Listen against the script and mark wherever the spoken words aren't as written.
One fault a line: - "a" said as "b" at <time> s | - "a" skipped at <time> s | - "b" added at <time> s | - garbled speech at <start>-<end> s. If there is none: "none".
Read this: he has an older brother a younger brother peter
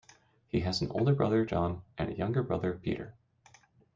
- "john and" added at 1.4 s